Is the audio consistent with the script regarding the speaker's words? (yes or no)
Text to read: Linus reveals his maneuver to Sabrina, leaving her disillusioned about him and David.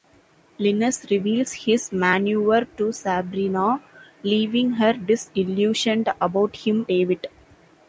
no